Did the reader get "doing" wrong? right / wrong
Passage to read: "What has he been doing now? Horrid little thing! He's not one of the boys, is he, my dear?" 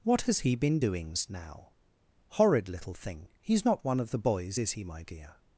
wrong